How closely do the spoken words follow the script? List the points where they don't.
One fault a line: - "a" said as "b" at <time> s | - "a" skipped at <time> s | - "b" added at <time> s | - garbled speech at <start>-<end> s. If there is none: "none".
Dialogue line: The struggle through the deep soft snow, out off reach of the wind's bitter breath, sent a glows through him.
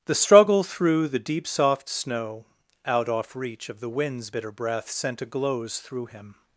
none